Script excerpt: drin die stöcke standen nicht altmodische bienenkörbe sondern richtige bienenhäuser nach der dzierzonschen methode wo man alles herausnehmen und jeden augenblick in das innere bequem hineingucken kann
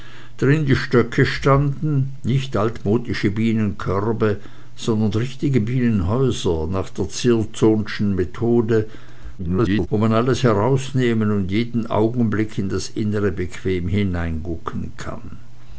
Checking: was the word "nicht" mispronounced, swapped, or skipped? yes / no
no